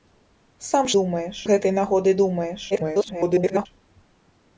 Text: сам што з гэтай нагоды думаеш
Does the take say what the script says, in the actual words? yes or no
no